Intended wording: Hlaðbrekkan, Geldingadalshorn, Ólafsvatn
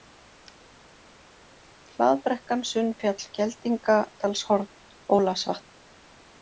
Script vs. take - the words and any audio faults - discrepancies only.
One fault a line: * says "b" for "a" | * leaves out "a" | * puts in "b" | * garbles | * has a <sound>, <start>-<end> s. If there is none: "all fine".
* puts in "Sunnfjall"